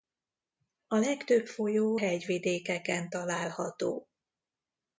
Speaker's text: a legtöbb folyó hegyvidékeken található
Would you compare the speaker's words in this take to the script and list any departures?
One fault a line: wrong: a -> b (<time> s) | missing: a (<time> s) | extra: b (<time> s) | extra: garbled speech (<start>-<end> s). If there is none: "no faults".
no faults